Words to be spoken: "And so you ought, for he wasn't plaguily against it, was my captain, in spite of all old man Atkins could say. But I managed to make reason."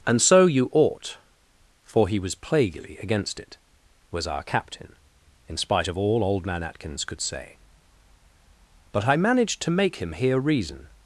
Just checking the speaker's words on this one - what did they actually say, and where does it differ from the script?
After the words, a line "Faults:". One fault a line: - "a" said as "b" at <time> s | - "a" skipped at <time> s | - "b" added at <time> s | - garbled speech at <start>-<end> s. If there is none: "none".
"And so you ought, for he was plaguily against it, was our captain, in spite of all old man Atkins could say. But I managed to make him hear reason."
Faults:
- "wasn't" said as "was" at 2.2 s
- "my" said as "our" at 4.2 s
- "him hear" added at 10.0 s